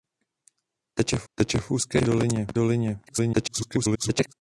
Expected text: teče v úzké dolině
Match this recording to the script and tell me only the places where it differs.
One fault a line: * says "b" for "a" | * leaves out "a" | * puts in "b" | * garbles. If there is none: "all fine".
* puts in "teče v"
* garbles